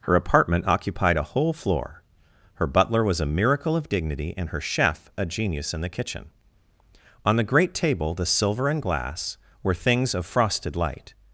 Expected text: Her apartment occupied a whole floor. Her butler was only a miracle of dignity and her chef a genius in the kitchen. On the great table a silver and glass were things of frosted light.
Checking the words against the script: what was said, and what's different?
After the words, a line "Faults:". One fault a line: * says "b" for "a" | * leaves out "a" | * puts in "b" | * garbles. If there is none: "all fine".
Her apartment occupied a whole floor. Her butler was a miracle of dignity and her chef a genius in the kitchen. On the great table the silver and glass were things of frosted light.
Faults:
* leaves out "only"
* says "the" for "a"